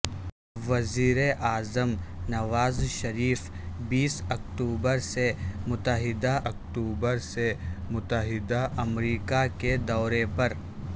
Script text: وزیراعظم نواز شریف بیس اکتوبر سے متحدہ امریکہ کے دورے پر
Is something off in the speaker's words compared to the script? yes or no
yes